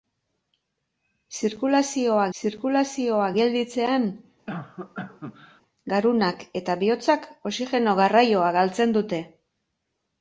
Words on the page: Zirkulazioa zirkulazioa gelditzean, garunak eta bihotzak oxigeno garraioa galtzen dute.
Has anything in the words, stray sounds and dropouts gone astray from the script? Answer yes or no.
yes